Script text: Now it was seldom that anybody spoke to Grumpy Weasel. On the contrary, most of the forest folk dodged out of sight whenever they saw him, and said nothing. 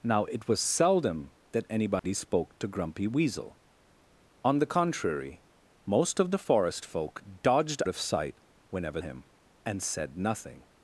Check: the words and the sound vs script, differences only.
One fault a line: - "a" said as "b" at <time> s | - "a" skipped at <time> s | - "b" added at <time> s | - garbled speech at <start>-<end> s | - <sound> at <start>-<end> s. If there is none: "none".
- dropout at 2.0-2.0 s
- "out" skipped at 7.8 s
- "they saw" skipped at 9.0 s